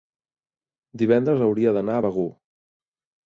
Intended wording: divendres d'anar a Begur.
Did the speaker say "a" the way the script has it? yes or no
yes